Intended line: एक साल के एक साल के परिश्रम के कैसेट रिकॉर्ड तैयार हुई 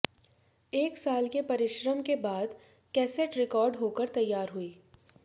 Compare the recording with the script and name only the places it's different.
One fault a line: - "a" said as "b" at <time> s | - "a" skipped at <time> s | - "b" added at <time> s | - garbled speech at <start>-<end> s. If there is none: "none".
- "एक साल" said as "परिश्रम" at 1.4 s
- "परिश्रम के" said as "बाद" at 2.2 s
- "होकर" added at 3.8 s